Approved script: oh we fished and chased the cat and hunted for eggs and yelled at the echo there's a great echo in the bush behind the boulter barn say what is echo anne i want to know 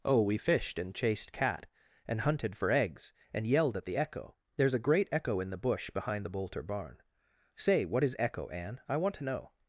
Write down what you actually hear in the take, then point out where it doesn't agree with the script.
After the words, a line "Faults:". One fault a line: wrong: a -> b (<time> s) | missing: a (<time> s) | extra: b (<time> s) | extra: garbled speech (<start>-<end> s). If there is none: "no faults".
oh we fished and chased cat and hunted for eggs and yelled at the echo there's a great echo in the bush behind the boulter barn say what is echo anne i want to know
Faults:
missing: the (1.3 s)